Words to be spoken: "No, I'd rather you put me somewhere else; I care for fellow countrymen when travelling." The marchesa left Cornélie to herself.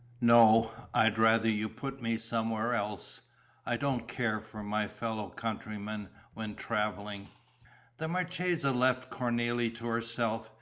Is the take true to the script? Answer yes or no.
no